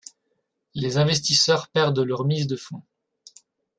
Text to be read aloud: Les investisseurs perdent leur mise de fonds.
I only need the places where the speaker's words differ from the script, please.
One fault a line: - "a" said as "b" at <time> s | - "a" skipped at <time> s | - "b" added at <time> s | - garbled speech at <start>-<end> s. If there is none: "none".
none